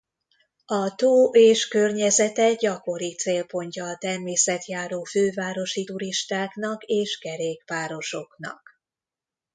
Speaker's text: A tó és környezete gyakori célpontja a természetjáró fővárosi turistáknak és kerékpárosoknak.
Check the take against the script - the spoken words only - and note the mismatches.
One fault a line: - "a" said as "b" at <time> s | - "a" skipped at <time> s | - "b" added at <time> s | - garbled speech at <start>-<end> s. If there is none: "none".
none